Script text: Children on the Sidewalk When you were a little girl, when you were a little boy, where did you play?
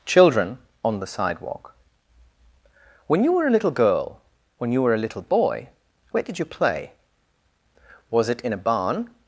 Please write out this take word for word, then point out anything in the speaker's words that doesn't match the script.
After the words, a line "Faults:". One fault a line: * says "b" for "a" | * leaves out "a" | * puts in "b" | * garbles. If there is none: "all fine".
Children on the Sidewalk When you were a little girl, when you were a little boy, where did you play? Was it in a barn
Faults:
* puts in "Was it in a barn"